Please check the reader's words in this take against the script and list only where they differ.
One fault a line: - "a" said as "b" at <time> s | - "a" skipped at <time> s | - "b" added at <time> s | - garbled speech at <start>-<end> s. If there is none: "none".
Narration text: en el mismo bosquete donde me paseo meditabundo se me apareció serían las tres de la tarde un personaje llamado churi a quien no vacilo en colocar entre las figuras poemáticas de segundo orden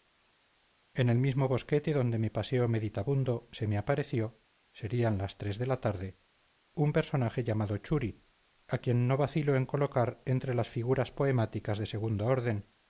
none